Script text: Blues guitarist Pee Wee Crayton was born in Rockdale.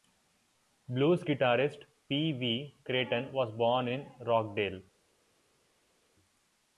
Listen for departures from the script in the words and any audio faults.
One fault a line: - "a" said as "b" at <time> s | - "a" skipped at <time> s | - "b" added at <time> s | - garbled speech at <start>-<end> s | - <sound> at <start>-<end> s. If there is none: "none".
none